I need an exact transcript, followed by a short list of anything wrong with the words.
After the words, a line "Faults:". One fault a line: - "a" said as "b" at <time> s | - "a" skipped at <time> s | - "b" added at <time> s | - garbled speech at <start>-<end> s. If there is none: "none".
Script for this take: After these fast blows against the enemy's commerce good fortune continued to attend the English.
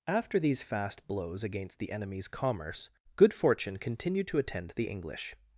After these fast blows against the enemy's commerce good fortune continued to attend the English.
Faults:
none